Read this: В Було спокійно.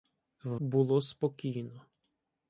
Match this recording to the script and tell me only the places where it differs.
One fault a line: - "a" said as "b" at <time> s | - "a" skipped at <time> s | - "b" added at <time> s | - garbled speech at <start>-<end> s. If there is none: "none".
none